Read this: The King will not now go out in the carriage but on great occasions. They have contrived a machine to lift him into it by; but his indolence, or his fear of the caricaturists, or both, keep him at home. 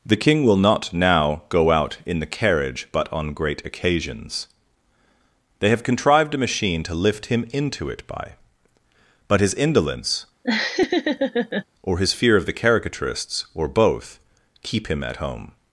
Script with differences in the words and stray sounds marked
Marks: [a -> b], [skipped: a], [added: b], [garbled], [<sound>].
The King will not now go out in the carriage but on great occasions. They have contrived a machine to lift him into it by; but his indolence, [laugh] or his fear of the caricaturists, or both, keep him at home.